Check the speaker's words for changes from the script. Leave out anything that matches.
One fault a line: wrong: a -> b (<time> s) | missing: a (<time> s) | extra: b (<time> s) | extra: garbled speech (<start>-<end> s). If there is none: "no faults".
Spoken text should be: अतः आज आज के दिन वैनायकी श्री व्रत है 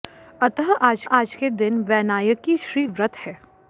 no faults